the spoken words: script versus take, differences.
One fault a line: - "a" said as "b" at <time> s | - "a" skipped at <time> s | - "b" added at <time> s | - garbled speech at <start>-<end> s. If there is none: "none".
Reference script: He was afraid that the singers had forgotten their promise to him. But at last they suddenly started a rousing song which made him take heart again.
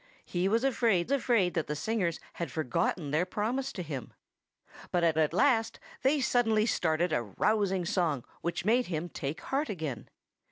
- "afraid" added at 1.1 s
- "at" added at 5.2 s